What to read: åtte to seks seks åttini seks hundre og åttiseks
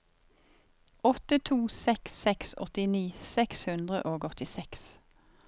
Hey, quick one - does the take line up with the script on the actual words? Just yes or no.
yes